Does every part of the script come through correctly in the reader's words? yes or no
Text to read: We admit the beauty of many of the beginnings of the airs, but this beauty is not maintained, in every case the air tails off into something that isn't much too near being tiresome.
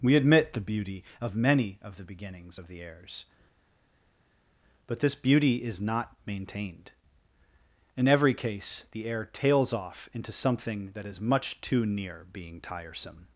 no